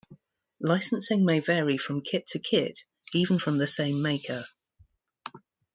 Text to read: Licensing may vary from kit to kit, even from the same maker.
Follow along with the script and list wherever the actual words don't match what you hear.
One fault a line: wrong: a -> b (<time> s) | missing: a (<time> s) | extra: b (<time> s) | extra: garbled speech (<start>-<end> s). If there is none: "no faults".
no faults